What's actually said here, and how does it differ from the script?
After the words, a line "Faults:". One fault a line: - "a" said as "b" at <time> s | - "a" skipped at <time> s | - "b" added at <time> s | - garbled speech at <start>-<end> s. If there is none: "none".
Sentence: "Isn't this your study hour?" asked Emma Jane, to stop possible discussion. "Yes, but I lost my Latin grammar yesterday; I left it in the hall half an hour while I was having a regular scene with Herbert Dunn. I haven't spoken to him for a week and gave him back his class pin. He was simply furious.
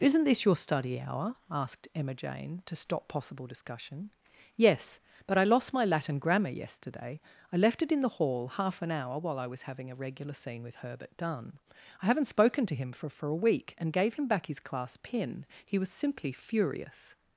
"Isn't this your study hour?" asked Emma Jane, to stop possible discussion. "Yes, but I lost my Latin grammar yesterday; I left it in the hall half an hour while I was having a regular scene with Herbert Dunn. I haven't spoken to him for for a week and gave him back his class pin. He was simply furious.
Faults:
- "for" added at 13.1 s